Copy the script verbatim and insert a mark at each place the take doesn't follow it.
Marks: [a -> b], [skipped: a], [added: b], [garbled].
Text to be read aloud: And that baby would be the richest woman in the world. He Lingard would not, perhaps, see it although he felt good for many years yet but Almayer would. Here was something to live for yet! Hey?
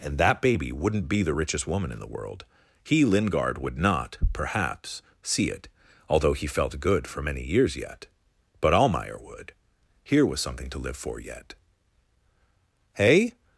And that baby [would -> wouldn't] be the richest woman in the world. He Lingard would not, perhaps, see it although he felt good for many years yet but Almayer would. Here was something to live for yet! Hey?